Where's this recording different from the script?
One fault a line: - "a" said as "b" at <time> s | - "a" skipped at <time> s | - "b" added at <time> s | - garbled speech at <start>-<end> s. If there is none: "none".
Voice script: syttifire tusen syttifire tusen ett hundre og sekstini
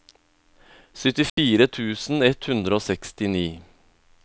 - "syttifire tusen" skipped at 2.2 s